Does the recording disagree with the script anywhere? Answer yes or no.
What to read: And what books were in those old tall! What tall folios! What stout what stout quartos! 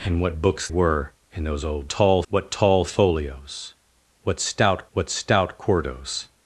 no